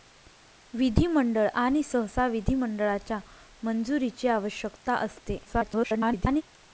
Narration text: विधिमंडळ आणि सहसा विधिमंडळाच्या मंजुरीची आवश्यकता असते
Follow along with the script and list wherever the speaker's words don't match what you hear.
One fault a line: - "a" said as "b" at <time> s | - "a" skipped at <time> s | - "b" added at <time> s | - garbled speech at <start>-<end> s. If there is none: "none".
- garbled speech at 5.4-6.4 s